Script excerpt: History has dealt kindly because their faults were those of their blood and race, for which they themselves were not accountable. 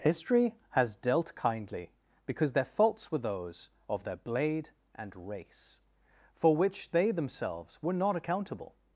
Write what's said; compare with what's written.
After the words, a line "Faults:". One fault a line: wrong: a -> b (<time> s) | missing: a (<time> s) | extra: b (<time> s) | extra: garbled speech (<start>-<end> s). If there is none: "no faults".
History has dealt kindly because their faults were those of their blade and race, for which they themselves were not accountable.
Faults:
wrong: blood -> blade (4.2 s)